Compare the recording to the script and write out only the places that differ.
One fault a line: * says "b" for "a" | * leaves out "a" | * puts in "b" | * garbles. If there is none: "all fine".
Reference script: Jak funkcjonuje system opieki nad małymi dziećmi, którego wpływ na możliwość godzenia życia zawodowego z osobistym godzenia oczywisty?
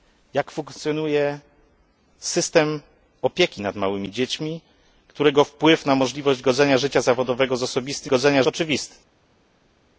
all fine